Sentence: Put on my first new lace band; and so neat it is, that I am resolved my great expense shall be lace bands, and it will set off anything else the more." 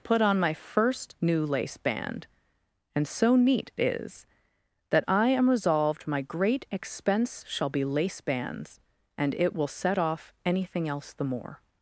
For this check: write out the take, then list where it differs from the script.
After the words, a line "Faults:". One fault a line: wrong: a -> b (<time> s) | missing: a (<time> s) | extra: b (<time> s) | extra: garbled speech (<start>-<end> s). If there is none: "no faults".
Put on my first new lace band; and so neat is, that I am resolved my great expense shall be lace bands, and it will set off anything else the more."
Faults:
missing: it (3.7 s)